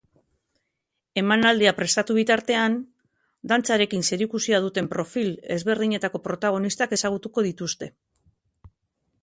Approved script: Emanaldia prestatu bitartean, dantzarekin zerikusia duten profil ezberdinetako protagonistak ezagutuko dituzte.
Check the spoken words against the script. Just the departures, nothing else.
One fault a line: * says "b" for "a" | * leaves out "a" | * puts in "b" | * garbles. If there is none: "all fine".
all fine